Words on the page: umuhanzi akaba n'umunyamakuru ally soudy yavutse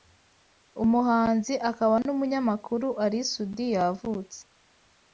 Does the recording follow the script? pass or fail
pass